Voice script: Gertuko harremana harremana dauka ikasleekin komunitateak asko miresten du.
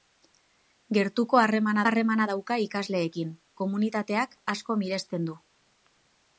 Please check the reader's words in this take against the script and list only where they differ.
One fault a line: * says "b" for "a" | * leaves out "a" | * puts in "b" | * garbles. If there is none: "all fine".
all fine